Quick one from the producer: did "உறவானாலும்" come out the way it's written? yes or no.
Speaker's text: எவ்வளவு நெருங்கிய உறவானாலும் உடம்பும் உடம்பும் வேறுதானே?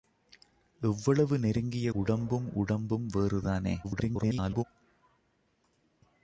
no